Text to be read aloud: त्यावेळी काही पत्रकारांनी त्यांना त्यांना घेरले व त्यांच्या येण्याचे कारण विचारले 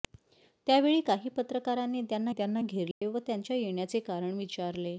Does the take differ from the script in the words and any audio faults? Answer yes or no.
yes